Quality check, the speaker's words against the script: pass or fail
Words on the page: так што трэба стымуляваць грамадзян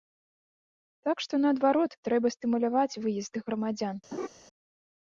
fail